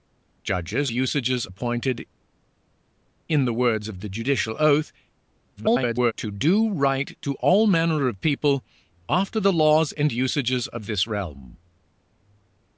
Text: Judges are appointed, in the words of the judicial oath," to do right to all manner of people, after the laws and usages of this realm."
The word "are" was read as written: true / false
false